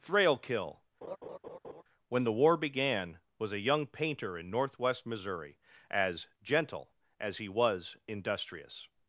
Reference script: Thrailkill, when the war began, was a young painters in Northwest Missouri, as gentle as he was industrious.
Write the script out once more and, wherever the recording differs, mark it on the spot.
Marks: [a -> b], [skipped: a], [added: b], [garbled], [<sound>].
Thrailkill, [laugh] when the war began, was a young [painters -> painter] in Northwest Missouri, as gentle as he was industrious.